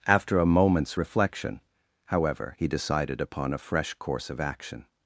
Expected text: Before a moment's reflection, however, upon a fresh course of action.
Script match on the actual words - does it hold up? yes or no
no